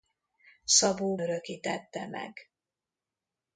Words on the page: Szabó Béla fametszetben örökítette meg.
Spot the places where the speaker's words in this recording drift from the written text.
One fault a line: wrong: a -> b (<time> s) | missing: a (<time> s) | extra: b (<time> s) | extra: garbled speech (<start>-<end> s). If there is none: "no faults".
missing: Béla fametszetben (1.2 s)